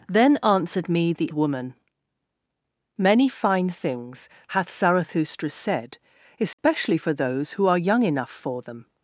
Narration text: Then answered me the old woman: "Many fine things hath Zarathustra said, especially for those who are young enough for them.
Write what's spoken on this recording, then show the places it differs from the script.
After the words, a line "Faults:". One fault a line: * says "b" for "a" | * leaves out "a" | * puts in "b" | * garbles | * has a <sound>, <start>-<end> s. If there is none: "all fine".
Then answered me the woman: "Many fine things hath Zarathustra said, especially for those who are young enough for them.
Faults:
* leaves out "old"
* has a dropout, 6.5-6.6 s